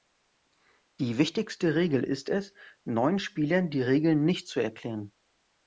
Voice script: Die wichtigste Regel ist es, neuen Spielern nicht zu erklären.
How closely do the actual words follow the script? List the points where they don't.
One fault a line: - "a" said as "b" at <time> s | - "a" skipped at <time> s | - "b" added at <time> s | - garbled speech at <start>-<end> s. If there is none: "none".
- "die Regeln" added at 3.7 s